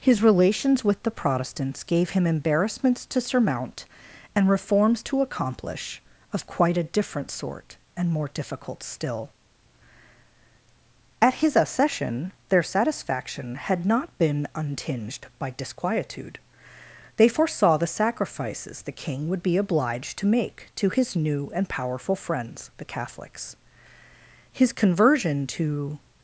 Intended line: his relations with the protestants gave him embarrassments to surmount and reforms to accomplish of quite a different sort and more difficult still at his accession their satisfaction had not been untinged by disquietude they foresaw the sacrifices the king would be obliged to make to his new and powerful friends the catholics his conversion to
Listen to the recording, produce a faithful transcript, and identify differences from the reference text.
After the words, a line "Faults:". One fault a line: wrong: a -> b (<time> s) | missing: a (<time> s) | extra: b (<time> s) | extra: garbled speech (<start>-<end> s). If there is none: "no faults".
his relations with the protestants gave him embarrassments to surmount and reforms to accomplish of quite a different sort and more difficult still at his accession their satisfaction had not been untinged by disquietude they foresaw the sacrifices the king would be obliged to make to his new and powerful friends the catholics his conversion to
Faults:
no faults